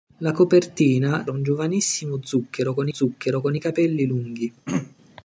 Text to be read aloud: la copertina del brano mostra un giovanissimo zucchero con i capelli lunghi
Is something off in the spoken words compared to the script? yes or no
yes